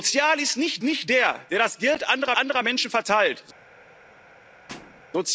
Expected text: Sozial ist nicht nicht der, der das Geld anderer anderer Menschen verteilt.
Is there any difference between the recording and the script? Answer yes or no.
no